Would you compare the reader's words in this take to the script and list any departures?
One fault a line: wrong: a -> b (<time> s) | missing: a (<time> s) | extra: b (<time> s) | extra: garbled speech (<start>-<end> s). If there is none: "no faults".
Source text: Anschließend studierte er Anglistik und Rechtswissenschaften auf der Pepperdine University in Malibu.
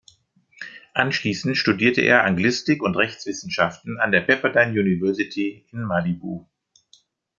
wrong: auf -> an (4.0 s)